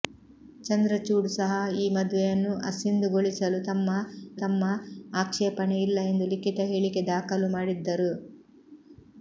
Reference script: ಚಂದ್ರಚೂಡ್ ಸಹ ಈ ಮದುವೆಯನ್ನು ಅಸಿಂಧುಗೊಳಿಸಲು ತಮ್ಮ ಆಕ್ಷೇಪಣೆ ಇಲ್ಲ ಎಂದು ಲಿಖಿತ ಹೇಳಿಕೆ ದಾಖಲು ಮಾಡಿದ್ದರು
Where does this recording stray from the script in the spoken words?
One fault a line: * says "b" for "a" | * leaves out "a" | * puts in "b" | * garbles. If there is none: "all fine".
* puts in "ತಮ್ಮ"